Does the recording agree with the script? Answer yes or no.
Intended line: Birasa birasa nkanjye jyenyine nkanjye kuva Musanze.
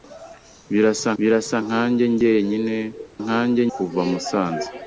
yes